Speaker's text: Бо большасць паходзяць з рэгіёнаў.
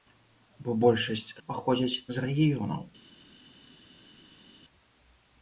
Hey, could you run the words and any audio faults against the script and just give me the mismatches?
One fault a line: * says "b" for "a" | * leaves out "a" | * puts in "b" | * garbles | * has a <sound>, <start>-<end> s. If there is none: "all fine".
all fine